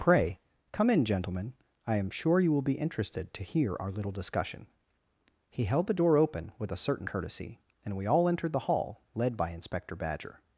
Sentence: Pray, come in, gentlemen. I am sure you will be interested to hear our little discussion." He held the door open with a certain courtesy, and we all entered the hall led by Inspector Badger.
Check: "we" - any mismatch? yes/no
no